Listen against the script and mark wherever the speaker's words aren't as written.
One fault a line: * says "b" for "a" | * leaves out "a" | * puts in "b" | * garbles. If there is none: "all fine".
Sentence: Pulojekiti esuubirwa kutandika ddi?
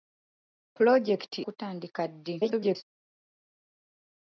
* leaves out "esuubirwa"
* garbles